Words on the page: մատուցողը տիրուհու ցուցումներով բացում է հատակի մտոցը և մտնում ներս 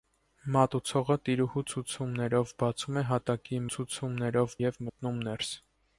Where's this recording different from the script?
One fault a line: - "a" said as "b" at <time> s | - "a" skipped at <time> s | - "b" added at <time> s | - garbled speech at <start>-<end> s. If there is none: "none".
- "մտոցը" said as "ցուցումներով" at 3.8 s